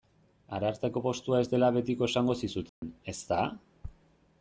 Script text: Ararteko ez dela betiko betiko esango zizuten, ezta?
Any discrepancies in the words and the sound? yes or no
yes